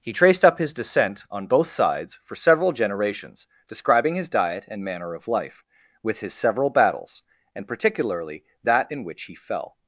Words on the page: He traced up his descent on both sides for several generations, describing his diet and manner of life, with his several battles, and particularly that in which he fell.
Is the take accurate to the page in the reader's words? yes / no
yes